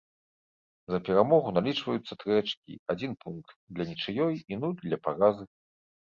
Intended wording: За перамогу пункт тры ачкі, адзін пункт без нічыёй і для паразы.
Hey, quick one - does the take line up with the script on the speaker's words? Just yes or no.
no